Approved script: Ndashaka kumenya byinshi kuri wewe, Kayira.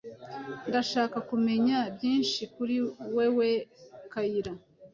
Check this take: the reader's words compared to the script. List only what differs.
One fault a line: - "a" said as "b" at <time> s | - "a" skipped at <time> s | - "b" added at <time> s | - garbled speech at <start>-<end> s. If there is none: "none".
none